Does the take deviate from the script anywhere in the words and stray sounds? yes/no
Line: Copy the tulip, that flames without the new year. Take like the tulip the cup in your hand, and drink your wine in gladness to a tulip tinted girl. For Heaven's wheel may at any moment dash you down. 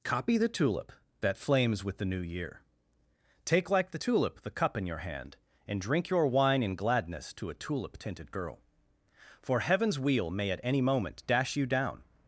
yes